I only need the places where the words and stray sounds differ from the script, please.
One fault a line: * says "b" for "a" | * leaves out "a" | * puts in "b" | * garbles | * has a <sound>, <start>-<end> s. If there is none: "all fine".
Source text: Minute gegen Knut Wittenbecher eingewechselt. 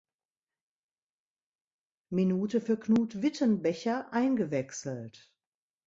* says "für" for "gegen"